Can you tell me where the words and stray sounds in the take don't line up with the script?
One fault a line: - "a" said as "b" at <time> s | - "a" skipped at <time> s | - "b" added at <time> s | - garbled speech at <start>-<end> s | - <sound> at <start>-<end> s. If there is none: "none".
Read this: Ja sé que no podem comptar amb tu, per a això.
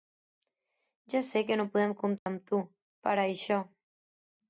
- dropout at 2.2-2.3 s